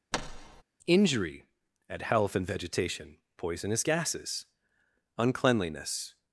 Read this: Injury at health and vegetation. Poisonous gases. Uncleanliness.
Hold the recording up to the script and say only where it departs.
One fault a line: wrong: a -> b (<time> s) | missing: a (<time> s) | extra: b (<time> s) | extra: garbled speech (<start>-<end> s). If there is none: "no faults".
no faults